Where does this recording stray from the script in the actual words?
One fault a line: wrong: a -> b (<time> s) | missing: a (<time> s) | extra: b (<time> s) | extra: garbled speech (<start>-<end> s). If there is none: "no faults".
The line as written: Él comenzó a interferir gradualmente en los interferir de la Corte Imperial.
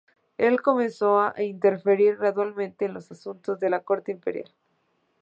wrong: interferir -> asuntos (3.1 s)